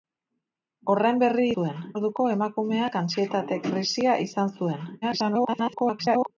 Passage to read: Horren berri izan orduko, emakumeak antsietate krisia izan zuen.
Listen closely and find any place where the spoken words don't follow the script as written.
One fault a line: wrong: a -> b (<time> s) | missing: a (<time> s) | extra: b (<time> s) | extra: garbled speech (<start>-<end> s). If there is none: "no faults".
wrong: izan -> zuen (1.6 s)
extra: garbled speech (5.0-6.3 s)